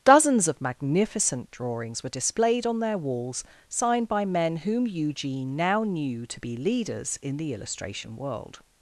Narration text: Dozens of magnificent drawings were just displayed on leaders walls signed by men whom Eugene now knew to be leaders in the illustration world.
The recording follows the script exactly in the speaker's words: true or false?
false